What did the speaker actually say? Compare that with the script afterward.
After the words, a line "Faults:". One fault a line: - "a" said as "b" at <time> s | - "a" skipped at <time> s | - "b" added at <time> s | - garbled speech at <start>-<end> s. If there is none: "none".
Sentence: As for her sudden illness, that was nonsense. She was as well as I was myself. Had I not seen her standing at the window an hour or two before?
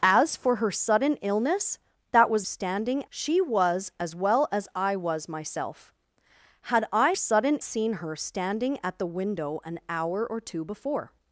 As for her sudden illness, that was standing. She was as well as I was myself. Had I sudden seen her standing at the window an hour or two before?
Faults:
- "nonsense" said as "standing" at 2.4 s
- "not" said as "sudden" at 7.1 s